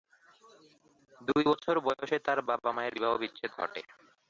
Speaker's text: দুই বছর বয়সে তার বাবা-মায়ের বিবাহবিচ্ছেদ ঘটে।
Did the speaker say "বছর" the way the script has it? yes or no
yes